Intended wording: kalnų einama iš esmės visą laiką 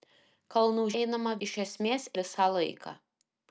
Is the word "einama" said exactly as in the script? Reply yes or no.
yes